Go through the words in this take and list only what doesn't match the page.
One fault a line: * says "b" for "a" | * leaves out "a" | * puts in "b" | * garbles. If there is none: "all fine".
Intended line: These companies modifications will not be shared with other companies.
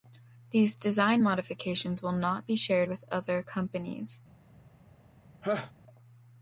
* says "design" for "companies"